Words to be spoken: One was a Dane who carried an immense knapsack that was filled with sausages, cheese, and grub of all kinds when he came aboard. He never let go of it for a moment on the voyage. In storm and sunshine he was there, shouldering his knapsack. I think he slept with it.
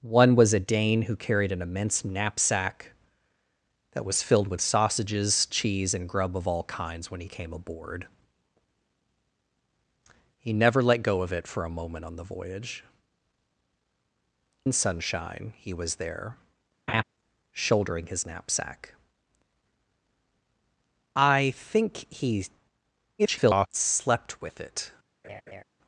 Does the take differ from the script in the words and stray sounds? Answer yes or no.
yes